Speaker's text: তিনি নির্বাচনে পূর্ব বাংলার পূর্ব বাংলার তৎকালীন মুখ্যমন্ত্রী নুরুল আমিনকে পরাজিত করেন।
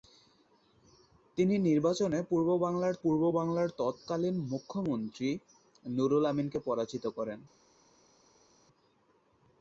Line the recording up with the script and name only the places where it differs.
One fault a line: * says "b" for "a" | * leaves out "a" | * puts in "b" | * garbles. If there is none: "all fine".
all fine